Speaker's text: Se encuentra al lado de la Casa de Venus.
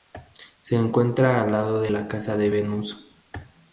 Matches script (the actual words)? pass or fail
pass